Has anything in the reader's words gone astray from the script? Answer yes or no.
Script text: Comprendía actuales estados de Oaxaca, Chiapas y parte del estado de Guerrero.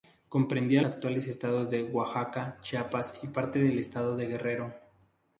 no